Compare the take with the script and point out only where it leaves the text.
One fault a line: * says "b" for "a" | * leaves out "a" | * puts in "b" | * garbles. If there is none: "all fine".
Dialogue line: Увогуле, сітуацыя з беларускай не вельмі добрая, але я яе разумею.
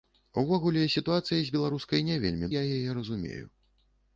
* leaves out "добрая але"